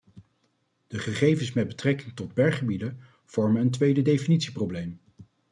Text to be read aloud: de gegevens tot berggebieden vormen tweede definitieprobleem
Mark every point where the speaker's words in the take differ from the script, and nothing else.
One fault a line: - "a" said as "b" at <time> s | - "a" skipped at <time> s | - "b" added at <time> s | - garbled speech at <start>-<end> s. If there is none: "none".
- "met betrekking" added at 1.5 s
- "een" added at 3.6 s